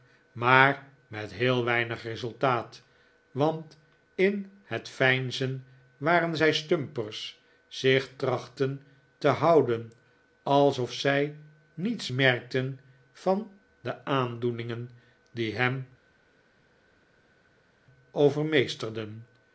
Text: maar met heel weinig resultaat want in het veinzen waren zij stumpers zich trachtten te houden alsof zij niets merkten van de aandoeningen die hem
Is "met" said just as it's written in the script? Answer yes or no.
yes